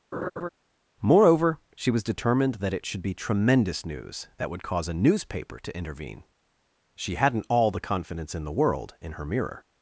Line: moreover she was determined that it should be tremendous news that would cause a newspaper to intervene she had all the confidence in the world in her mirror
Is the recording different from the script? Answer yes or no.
yes